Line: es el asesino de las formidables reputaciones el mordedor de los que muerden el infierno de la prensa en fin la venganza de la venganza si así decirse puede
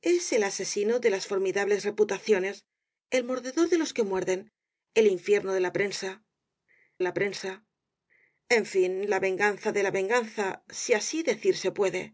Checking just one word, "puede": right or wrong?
right